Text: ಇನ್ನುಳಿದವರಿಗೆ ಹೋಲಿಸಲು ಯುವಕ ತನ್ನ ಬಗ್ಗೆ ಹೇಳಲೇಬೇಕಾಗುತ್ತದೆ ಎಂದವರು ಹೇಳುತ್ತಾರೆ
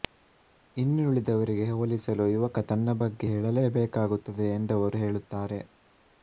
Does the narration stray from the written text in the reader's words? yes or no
no